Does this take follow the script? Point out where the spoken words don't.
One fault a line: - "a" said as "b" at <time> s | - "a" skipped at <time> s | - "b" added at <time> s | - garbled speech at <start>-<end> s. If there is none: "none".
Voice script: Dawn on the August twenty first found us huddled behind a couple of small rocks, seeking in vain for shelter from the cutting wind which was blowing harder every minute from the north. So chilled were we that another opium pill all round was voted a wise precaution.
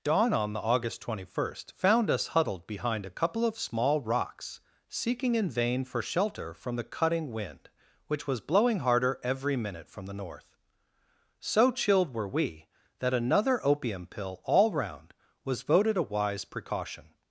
none